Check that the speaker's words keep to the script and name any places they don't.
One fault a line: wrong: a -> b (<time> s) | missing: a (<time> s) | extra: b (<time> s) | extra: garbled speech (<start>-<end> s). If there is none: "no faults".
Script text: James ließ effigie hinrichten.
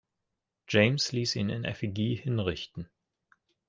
extra: ihn in (1.4 s)